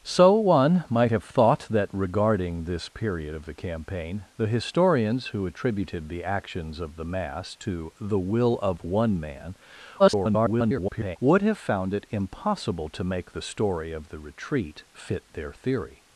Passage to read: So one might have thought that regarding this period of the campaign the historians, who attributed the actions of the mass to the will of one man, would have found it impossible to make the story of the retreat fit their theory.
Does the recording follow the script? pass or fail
fail